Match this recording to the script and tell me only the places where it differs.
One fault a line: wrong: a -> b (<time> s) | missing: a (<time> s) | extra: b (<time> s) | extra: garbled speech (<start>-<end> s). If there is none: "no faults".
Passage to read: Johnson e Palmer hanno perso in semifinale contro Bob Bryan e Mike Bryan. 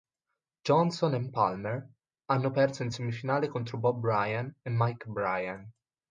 no faults